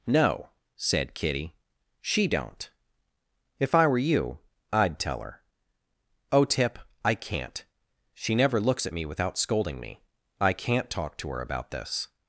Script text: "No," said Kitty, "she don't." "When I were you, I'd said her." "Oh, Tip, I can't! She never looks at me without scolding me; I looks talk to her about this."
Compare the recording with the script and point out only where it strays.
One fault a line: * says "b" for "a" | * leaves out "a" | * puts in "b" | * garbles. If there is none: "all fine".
* says "If" for "When"
* says "tell" for "said"
* says "can't" for "looks"